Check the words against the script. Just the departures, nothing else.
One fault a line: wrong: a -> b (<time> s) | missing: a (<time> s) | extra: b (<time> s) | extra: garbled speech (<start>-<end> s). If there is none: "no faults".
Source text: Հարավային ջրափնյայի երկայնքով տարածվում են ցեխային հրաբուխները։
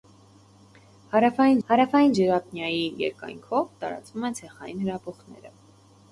extra: հարավային (1.7 s)